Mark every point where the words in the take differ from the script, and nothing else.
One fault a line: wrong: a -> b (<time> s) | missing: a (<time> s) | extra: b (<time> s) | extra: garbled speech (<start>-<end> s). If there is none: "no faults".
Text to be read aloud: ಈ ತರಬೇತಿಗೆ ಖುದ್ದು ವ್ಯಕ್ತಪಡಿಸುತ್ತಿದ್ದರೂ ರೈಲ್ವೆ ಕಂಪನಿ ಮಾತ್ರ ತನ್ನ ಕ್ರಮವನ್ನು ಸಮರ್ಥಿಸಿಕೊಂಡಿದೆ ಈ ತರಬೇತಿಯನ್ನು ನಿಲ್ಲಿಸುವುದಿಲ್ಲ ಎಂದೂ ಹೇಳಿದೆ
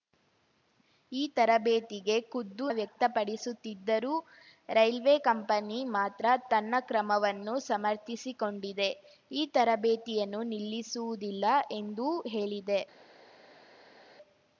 no faults